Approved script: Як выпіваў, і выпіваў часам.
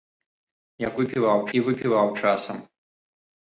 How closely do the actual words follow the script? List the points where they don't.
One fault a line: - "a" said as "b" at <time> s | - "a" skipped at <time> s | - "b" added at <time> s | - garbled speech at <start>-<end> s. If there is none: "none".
none